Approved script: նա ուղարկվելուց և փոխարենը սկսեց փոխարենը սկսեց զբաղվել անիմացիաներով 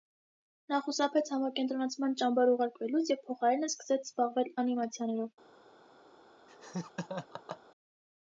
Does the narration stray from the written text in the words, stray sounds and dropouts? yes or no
yes